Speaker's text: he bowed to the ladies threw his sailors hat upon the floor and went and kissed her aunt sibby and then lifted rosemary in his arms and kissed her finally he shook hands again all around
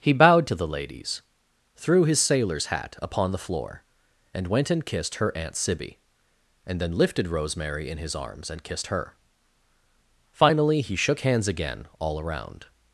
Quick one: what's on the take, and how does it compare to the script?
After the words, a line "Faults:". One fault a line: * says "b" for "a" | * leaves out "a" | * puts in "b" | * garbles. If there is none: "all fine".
he bowed to the ladies threw his sailors hat upon the floor and went and kissed her aunt sibby and then lifted rosemary in his arms and kissed her finally he shook hands again all around
Faults:
all fine